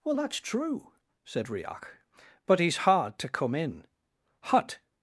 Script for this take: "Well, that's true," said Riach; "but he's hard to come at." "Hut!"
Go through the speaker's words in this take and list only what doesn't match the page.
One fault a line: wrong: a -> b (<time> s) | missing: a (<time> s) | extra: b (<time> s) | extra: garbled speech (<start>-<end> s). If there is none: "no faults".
wrong: at -> in (3.5 s)